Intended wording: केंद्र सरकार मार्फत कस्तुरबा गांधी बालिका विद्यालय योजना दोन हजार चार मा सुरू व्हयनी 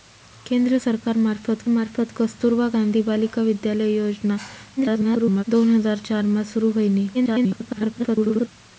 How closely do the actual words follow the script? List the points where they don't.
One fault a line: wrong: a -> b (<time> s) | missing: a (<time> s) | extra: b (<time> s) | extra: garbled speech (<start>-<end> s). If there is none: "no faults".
extra: मार्फत (1.7 s)
extra: garbled speech (4.8-5.4 s)
extra: garbled speech (7.1-8.5 s)